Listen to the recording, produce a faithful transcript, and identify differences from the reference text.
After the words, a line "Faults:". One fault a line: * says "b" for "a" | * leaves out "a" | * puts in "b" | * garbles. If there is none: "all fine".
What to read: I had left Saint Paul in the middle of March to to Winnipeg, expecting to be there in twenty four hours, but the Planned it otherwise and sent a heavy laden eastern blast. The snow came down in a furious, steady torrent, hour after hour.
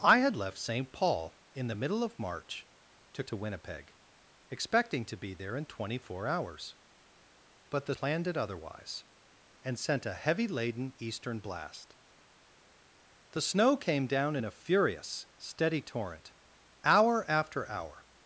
I had left Saint Paul in the middle of March to to Winnipeg, expecting to be there in twenty four hours, but the Planned it otherwise and sent a heavy laden eastern blast. The snow came down in a furious, steady torrent, hour after hour.
Faults:
all fine